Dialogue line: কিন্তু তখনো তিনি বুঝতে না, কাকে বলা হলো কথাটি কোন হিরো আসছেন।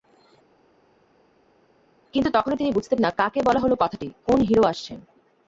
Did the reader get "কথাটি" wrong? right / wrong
right